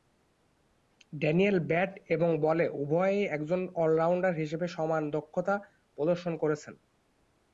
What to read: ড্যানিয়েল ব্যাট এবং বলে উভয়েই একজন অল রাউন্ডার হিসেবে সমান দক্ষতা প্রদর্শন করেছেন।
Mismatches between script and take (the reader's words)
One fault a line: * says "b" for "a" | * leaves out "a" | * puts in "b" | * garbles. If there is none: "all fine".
all fine